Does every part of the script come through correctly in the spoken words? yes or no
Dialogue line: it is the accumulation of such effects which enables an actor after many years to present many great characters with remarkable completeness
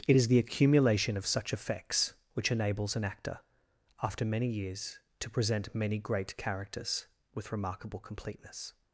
yes